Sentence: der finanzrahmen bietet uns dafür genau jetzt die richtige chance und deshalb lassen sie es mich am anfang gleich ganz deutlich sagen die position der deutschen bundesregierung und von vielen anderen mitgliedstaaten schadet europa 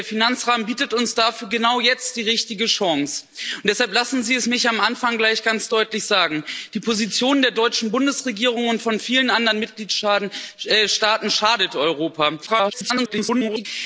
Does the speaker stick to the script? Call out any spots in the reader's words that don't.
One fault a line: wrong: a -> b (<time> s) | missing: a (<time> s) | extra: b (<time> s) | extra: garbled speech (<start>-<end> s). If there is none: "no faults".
extra: garbled speech (12.5-13.7 s)